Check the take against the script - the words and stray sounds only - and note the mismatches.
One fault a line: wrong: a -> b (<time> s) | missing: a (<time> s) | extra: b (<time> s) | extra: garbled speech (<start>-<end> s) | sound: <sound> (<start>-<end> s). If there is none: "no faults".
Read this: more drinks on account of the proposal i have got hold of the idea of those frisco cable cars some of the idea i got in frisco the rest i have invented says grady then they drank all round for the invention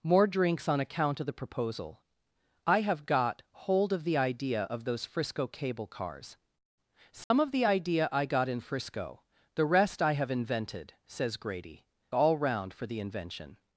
sound: dropout (7.2-7.3 s)
missing: then they drank (11.8 s)